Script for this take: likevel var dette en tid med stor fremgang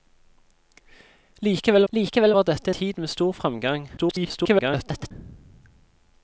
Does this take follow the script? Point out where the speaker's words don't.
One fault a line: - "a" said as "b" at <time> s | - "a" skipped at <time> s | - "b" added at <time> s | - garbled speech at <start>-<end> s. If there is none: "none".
- "likevel" added at 1.9 s
- "en" skipped at 2.7 s
- garbled speech at 4.0-5.1 s